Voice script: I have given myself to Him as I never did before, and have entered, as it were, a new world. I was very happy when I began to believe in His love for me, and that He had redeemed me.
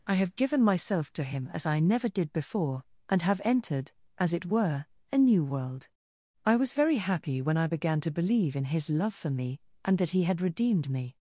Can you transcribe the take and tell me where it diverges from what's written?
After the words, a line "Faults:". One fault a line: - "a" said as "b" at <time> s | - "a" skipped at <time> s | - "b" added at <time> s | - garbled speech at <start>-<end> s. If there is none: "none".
I have given myself to Him as I never did before, and have entered, as it were, a new world. I was very happy when I began to believe in His love for me, and that He had redeemed me.
Faults:
none